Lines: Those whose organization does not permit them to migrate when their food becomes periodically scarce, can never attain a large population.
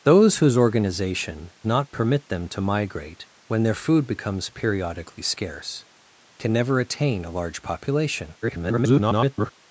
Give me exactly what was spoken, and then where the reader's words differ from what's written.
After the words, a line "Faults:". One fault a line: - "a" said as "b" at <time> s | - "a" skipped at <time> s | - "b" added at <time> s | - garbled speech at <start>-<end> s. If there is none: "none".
Those whose organization not permit them to migrate when their food becomes periodically scarce, can never attain a large population. [garbled]
Faults:
- "does" skipped at 1.5 s
- garbled speech at 8.4-9.5 s